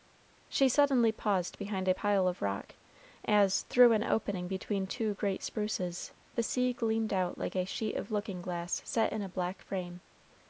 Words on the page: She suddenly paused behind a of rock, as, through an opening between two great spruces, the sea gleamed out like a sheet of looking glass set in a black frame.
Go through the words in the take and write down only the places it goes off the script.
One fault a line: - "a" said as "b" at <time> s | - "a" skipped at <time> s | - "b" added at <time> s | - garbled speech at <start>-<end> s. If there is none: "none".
- "pile" added at 1.9 s